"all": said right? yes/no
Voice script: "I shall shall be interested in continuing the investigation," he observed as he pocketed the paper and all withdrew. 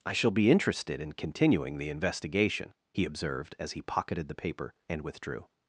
no